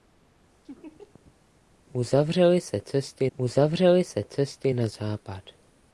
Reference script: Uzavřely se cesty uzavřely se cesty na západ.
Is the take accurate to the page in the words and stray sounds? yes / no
no